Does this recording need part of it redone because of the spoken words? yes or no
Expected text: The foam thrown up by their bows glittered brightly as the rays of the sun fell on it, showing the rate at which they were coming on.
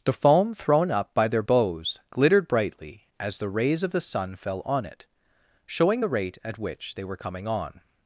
no